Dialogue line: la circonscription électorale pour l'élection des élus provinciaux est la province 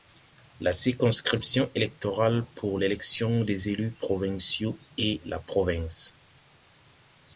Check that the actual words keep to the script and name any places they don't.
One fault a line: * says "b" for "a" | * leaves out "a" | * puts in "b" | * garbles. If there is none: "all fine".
all fine